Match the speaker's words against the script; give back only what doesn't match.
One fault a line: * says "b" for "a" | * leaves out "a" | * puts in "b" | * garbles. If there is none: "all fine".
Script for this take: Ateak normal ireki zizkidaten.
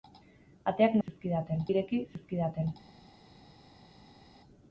* says "zizkidaten" for "normal"